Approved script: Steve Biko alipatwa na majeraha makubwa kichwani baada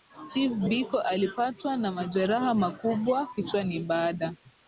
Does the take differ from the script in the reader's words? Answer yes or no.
no